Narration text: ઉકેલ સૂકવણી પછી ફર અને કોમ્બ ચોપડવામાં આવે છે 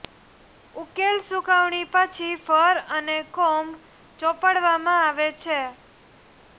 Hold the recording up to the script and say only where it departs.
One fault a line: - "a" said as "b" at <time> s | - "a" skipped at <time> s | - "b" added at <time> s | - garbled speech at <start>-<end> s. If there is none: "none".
none